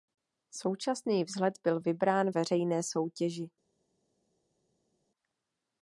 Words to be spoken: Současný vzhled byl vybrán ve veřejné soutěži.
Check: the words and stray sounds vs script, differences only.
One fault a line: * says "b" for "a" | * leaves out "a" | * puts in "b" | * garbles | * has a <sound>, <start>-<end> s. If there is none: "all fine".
* leaves out "ve"